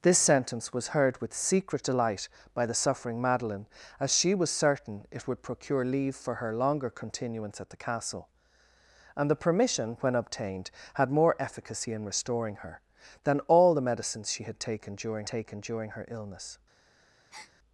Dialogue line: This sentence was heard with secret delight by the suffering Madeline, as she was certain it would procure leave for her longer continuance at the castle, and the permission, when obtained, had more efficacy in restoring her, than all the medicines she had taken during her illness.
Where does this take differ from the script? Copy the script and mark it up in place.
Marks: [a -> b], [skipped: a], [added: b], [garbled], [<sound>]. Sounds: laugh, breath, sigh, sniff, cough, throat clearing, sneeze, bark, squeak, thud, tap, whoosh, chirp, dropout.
This sentence was heard with secret delight by the suffering Madeline, as she was certain it would procure leave for her longer continuance at the castle, and the permission, when obtained, had more efficacy in restoring her, than all the medicines she had taken during [added: taken during] her illness. [breath]